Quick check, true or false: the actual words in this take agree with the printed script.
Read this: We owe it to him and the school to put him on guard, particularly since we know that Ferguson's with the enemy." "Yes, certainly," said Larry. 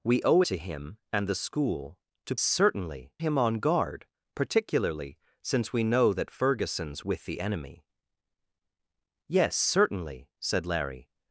false